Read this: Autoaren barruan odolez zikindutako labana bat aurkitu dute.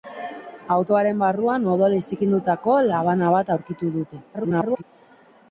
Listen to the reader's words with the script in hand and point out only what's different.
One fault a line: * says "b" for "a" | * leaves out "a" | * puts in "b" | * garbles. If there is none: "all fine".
* garbles